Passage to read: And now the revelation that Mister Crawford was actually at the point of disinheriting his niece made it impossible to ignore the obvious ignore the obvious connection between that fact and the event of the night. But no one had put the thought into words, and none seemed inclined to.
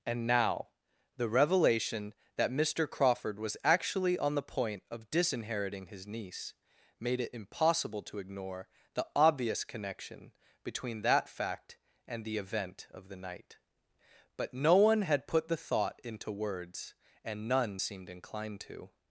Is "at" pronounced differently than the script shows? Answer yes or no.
yes